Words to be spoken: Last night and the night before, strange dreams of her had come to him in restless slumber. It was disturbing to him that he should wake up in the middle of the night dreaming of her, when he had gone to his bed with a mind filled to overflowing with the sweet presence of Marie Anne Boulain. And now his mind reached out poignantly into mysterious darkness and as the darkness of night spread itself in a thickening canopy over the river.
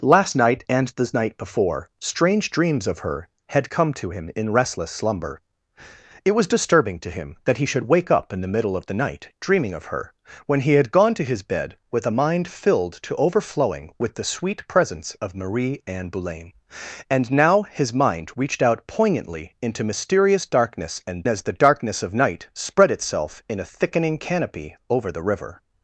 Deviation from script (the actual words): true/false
false